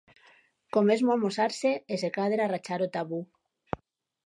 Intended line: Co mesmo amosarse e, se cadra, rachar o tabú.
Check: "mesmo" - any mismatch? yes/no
no